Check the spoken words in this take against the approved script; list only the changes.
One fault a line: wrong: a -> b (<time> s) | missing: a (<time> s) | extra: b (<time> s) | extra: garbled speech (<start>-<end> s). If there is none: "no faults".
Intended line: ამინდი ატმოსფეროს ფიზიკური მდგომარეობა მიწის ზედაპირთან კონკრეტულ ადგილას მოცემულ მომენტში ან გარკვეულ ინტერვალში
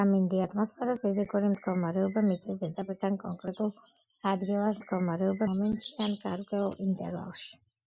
wrong: მოცემულ -> მდგომარეობა (4.8 s)